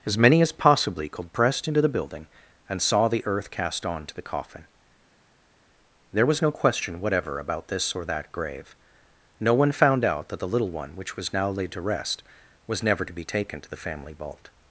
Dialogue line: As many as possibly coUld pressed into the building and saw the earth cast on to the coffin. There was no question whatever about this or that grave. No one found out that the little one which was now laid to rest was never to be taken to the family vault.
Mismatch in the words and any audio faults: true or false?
false